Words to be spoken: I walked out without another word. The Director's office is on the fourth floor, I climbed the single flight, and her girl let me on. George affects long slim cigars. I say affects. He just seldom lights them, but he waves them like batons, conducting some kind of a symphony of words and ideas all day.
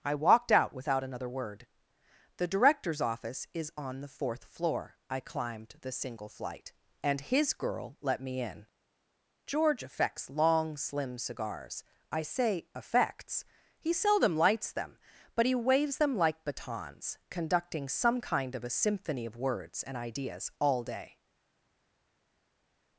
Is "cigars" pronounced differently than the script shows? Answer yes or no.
no